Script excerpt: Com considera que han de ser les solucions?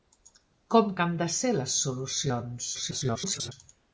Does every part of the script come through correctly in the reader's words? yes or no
no